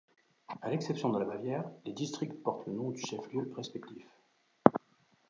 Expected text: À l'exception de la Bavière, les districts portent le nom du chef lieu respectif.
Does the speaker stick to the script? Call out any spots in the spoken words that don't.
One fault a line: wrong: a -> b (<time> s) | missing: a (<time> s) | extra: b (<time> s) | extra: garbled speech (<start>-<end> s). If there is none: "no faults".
no faults